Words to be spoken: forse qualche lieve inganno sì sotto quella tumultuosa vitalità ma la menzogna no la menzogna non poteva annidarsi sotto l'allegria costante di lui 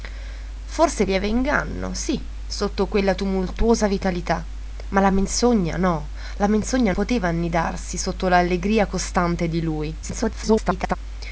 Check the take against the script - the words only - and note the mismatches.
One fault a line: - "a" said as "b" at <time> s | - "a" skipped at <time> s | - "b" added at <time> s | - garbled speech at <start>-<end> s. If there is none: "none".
- "qualche" skipped at 1.1 s
- "non" skipped at 6.9 s
- garbled speech at 10.0-11.0 s